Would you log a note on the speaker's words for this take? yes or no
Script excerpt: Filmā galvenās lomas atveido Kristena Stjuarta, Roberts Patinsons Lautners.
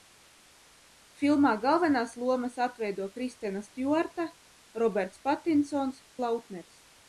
no